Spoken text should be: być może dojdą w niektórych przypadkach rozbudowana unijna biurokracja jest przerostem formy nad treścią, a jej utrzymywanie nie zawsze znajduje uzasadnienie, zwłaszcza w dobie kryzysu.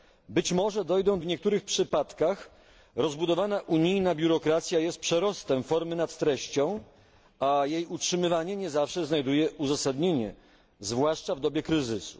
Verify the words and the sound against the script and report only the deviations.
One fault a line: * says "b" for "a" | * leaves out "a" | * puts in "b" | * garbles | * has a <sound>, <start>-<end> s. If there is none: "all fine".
all fine